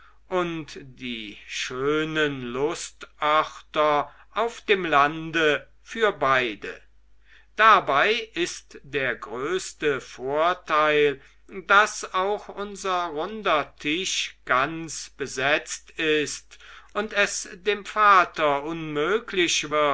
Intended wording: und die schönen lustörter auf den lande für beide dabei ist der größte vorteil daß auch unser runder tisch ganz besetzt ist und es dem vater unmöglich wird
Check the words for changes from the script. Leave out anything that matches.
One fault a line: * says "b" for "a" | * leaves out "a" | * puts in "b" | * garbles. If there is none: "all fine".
* says "dem" for "den"